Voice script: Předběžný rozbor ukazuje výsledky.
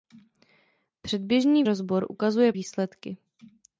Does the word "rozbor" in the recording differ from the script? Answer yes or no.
no